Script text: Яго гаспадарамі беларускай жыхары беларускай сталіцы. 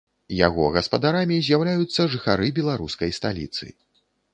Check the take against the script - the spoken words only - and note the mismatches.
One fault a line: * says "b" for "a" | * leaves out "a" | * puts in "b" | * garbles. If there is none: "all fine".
* says "з'яўляюцца" for "беларускай"